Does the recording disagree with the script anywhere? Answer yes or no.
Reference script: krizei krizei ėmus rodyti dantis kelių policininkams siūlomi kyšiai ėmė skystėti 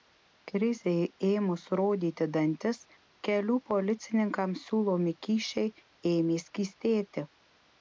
yes